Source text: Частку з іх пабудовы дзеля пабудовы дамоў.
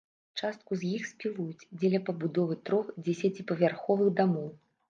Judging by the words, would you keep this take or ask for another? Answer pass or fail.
fail